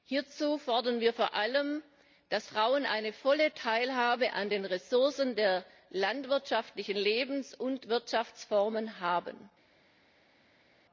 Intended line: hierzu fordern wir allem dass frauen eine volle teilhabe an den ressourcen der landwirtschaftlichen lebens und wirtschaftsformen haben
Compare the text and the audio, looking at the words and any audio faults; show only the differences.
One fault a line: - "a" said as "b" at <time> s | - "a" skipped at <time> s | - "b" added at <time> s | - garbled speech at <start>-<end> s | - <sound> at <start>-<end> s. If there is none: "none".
- "vor" added at 1.1 s